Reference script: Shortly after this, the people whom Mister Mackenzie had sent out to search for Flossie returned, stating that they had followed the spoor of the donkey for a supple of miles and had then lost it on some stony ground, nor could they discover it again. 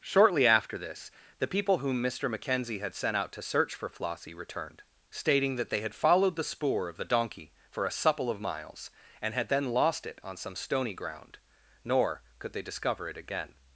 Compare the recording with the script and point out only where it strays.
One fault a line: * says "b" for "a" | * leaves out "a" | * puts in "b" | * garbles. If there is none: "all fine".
all fine